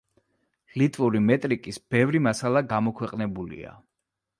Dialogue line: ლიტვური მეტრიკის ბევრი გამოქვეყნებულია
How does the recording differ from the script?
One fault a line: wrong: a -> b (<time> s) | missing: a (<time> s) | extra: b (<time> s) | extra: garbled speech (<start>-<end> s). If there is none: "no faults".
extra: მასალა (2.3 s)